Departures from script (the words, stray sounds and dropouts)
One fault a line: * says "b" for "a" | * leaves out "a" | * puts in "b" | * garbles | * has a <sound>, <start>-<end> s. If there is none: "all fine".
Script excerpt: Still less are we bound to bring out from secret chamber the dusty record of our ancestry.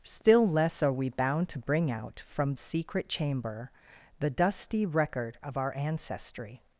all fine